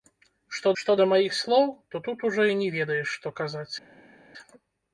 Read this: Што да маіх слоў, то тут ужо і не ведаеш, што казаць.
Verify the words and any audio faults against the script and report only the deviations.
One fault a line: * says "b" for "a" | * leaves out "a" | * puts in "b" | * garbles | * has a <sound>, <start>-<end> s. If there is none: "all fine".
* puts in "што"